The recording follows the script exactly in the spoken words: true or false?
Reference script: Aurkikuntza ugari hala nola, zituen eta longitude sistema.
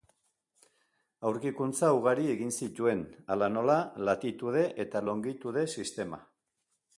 false